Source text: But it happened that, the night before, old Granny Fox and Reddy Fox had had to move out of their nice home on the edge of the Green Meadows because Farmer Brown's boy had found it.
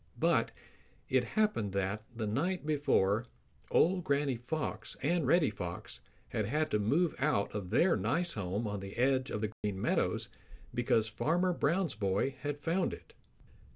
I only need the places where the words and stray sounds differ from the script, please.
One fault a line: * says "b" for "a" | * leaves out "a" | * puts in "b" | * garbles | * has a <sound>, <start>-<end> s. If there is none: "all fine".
* has a dropout, 9.5-9.6 s